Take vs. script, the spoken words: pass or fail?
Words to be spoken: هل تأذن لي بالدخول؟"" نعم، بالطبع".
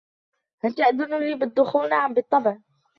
pass